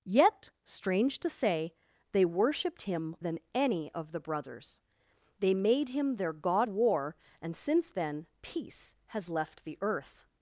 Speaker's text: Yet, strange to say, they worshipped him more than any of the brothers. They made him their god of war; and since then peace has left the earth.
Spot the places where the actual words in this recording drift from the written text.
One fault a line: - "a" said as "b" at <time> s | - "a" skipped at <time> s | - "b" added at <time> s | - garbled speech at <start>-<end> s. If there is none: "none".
- "more" skipped at 3.1 s
- "of" skipped at 6.7 s